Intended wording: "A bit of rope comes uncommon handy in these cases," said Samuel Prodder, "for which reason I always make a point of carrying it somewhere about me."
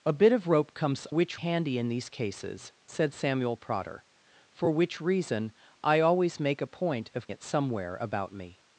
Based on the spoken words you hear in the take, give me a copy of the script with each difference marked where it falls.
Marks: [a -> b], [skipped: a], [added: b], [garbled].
"A bit of rope comes [uncommon -> which] handy in these cases," said Samuel Prodder, "for which reason I always make a point of [skipped: carrying] it somewhere about me."